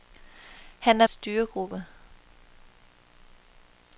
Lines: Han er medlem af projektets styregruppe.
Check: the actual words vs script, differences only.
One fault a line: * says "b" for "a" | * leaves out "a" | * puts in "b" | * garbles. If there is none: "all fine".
* leaves out "medlem af projektets"